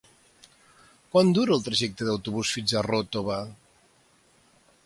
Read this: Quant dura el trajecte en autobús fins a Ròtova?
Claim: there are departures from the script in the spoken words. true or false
false